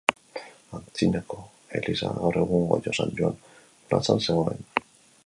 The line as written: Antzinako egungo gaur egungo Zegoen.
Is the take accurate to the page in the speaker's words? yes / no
no